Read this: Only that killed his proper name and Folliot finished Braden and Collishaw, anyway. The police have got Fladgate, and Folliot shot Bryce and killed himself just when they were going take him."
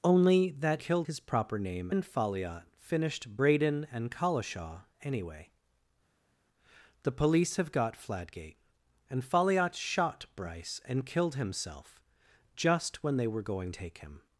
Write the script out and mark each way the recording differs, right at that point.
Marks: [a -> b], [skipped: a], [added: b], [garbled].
Only that killed his proper name and Folliot finished Braden and Collishaw, anyway. The police have got Fladgate, and Folliot shot Bryce and killed himself just when they were going take him."